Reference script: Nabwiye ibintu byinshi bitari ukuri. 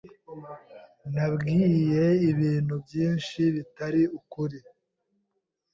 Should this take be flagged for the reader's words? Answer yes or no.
no